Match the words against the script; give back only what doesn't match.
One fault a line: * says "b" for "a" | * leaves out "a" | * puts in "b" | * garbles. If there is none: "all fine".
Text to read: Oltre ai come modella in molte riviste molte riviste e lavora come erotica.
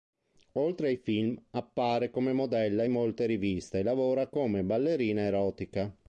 * puts in "film appare"
* leaves out "molte riviste"
* puts in "ballerina"